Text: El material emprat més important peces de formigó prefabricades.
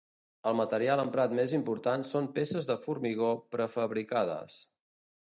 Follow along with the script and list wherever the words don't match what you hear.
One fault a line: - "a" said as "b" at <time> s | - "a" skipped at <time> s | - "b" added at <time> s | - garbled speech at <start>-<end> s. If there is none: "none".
- "són" added at 2.1 s